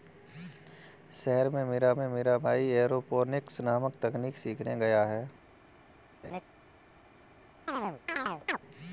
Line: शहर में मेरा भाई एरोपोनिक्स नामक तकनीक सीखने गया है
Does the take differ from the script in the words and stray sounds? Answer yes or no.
yes